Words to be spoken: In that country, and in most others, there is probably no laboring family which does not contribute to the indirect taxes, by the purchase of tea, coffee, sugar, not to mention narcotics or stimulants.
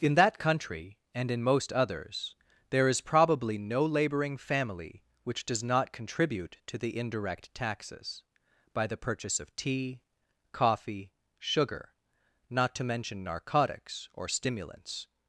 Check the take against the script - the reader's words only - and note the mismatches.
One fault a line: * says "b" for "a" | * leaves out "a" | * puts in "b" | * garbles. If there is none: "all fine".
all fine